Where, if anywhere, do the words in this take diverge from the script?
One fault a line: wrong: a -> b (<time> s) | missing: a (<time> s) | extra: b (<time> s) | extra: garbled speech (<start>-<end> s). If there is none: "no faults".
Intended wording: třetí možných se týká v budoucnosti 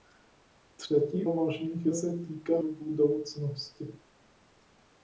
no faults